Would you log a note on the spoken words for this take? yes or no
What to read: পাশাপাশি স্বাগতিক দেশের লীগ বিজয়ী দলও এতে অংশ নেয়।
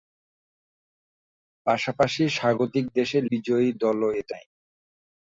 yes